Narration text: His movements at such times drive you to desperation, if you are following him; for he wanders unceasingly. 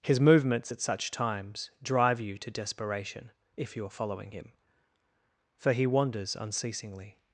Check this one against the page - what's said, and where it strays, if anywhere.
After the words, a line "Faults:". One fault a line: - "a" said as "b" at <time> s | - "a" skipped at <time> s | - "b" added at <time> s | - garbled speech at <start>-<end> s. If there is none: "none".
His movements at such times drive you to desperation, if you are following him; for he wanders unceasingly.
Faults:
none